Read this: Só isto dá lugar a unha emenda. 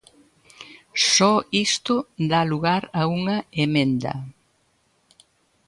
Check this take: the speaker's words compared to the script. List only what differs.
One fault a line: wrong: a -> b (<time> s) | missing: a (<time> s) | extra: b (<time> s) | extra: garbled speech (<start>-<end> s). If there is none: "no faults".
no faults